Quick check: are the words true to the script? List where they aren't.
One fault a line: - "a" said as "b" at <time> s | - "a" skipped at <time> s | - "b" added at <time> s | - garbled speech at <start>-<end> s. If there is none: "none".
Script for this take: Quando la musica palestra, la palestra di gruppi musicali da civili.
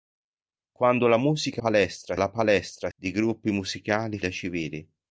none